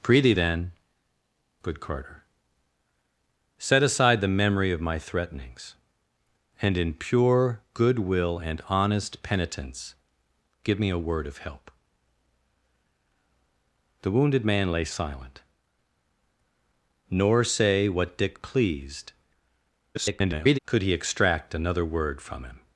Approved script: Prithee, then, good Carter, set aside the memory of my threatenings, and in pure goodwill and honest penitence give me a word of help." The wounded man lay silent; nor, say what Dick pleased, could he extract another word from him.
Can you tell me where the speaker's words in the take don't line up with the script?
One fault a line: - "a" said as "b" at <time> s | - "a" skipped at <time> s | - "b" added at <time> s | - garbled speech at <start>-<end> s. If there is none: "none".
- garbled speech at 19.9-20.6 s